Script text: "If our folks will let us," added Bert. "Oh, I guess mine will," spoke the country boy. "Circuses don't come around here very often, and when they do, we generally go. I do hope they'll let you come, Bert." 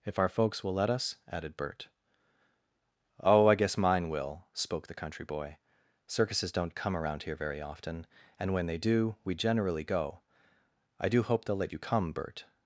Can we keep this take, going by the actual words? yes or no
yes